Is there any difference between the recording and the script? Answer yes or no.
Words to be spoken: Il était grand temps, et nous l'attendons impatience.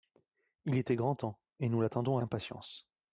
no